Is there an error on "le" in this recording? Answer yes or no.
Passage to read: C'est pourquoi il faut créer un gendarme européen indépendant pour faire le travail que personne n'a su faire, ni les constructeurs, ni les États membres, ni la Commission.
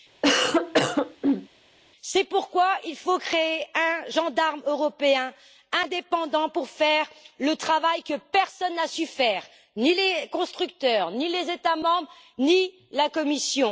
no